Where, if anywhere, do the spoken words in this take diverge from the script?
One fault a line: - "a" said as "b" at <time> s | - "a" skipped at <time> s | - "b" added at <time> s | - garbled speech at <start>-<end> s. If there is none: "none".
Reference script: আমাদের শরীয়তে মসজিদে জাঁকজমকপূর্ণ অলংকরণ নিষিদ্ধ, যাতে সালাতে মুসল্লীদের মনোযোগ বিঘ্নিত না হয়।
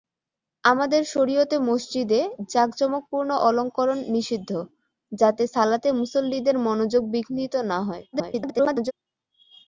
- garbled speech at 8.1-8.9 s